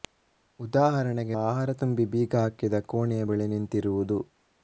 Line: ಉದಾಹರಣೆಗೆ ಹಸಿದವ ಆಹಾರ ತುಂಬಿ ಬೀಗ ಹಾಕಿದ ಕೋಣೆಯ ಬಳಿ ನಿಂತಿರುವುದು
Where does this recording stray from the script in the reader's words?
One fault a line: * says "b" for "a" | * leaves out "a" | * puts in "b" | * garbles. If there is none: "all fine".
* leaves out "ಹಸಿದವ"